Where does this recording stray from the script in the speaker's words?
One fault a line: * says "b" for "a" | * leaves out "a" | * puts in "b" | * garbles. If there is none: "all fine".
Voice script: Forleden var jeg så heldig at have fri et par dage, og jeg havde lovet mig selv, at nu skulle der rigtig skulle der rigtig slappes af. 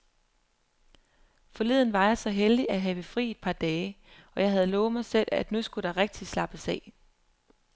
* leaves out "skulle der rigtig"